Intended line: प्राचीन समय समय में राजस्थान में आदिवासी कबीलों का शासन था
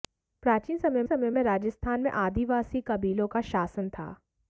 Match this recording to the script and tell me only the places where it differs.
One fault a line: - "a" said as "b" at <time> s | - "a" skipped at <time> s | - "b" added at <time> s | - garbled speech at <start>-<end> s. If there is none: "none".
none